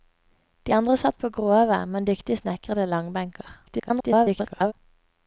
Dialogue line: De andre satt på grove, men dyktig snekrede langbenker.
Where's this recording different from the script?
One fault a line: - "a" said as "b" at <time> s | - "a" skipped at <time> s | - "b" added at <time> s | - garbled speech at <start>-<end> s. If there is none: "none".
- garbled speech at 3.7-4.7 s